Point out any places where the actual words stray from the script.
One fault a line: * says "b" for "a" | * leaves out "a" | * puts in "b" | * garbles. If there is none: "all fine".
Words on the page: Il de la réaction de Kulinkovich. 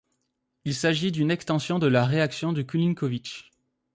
* puts in "s'agit d'une extension"